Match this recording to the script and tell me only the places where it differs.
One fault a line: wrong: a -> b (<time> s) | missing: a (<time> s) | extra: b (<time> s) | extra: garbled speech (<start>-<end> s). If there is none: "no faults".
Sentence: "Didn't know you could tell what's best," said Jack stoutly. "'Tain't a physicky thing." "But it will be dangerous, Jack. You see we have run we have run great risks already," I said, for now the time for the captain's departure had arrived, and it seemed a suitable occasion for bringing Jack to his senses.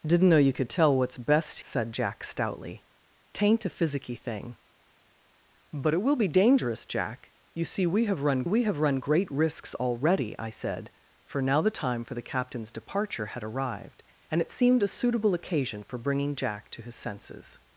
no faults